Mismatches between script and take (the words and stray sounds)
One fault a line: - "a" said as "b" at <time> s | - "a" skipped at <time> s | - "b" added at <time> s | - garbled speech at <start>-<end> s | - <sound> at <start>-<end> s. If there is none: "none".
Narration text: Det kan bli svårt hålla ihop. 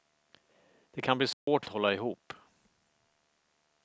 - dropout at 1.3-1.5 s